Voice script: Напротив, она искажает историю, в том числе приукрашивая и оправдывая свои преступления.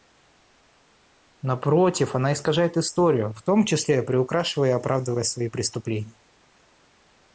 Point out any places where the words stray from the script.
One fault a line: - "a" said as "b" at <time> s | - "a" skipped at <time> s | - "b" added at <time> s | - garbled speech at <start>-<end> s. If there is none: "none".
none